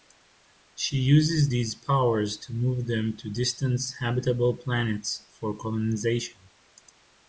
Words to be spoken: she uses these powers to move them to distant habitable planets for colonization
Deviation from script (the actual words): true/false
false